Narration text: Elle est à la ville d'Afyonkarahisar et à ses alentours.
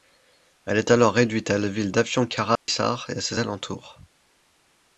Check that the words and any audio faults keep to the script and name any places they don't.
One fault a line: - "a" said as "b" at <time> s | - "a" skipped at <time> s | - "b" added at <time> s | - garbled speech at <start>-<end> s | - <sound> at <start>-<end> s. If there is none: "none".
- "alors réduite" added at 0.9 s
- dropout at 2.6-2.7 s